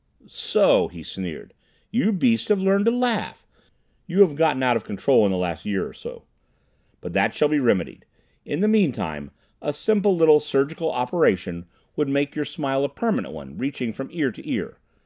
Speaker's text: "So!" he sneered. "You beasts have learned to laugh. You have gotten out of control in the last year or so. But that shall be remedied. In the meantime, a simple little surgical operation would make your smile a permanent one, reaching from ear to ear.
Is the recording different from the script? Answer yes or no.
no